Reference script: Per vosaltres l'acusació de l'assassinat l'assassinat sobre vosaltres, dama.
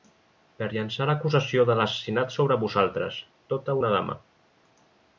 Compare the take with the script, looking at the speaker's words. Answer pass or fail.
fail